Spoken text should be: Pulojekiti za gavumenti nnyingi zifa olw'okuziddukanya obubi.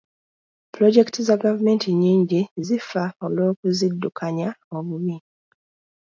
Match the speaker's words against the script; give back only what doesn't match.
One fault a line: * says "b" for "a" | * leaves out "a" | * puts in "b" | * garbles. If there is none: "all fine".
all fine